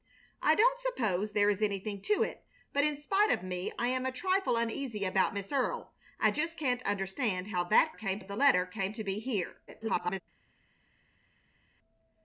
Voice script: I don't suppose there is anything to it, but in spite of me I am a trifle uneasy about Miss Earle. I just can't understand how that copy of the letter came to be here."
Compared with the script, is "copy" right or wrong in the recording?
wrong